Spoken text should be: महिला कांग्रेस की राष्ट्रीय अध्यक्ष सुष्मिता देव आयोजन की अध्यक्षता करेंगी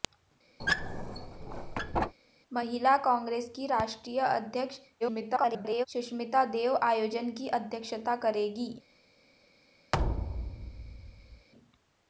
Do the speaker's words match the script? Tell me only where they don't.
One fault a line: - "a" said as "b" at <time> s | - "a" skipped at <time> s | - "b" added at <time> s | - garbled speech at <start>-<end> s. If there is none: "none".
- garbled speech at 5.0-5.9 s